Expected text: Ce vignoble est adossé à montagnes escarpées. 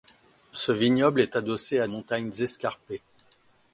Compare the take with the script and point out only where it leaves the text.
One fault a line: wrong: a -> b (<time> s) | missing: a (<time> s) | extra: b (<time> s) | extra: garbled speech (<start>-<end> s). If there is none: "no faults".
no faults